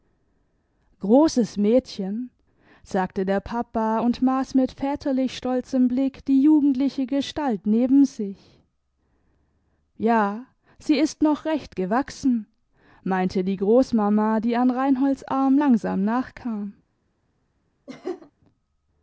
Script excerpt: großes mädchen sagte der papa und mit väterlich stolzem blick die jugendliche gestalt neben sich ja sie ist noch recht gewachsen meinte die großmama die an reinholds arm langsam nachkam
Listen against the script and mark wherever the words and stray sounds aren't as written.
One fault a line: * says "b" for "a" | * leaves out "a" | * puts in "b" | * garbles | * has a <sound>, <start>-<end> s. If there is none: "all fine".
* puts in "maß"
* has a laugh, 17.9-18.3 s